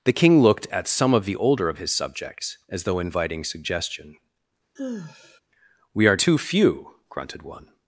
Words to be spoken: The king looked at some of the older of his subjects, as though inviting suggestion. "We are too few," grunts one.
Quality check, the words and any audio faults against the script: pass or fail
fail